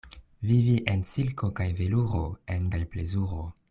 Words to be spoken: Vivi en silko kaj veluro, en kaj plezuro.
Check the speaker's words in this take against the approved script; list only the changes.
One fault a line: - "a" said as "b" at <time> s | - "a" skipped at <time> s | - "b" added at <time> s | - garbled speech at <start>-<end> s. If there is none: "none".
none